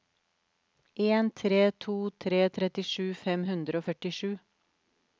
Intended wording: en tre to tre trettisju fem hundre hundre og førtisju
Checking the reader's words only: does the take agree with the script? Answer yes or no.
no